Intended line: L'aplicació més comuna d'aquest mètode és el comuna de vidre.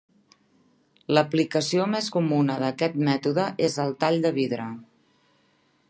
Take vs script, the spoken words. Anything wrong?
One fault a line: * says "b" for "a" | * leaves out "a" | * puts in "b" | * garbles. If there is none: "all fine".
* says "tall" for "comuna"